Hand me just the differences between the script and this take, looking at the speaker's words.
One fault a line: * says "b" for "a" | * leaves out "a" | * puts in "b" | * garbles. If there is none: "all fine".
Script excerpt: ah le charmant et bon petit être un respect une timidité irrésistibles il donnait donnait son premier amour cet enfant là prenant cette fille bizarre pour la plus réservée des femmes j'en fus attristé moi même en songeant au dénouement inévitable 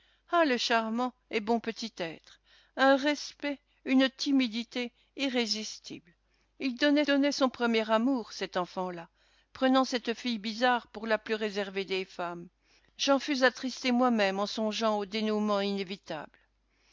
all fine